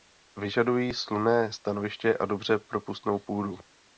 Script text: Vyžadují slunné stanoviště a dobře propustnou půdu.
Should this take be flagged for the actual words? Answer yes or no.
no